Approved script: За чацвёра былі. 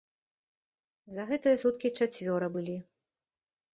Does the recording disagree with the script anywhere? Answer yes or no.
yes